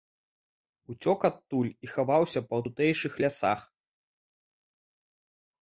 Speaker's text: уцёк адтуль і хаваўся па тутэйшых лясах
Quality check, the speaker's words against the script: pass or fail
pass